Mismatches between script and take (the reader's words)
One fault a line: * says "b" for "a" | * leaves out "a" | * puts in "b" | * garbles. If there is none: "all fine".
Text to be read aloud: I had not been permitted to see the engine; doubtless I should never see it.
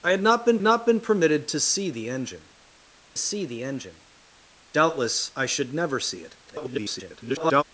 * puts in "not been"
* puts in "see the engine"
* garbles